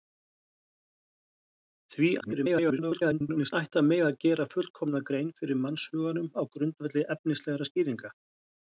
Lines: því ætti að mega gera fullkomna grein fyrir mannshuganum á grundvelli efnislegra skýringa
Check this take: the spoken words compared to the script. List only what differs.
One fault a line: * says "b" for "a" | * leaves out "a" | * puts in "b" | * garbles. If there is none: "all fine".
* garbles